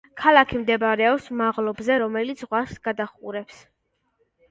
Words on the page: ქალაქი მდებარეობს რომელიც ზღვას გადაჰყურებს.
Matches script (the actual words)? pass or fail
fail